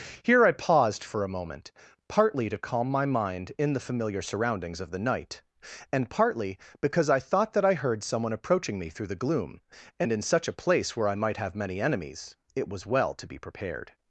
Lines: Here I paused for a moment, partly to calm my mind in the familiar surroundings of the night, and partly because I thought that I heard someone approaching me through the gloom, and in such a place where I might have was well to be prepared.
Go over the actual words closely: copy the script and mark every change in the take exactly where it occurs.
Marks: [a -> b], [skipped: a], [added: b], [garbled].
Here I paused for a moment, partly to calm my mind in the familiar surroundings of the night, and partly because I thought that I heard someone approaching me through the gloom, and in such a place where I might have [added: many enemies it] was well to be prepared.